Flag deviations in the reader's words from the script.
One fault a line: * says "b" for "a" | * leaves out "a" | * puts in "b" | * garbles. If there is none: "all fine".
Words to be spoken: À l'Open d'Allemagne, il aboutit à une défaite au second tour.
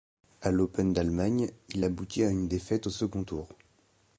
all fine